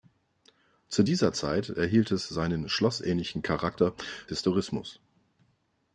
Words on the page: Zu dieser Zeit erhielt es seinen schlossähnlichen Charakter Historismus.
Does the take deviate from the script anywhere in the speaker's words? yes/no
no